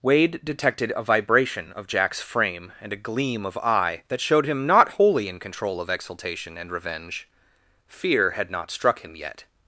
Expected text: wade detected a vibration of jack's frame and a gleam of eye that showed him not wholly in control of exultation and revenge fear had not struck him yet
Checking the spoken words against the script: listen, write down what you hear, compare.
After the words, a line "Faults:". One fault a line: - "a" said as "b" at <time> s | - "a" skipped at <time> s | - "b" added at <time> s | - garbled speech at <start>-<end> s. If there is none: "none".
wade detected a vibration of jack's frame and a gleam of eye that showed him not wholly in control of exultation and revenge fear had not struck him yet
Faults:
none